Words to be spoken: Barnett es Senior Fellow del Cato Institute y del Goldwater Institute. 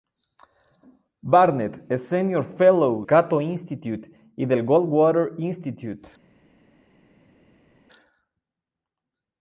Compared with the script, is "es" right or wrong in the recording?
right